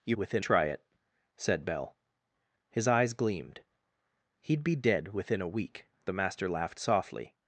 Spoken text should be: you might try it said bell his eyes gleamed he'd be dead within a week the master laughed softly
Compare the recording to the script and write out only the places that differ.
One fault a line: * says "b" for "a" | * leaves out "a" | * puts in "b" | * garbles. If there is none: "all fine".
* says "within" for "might"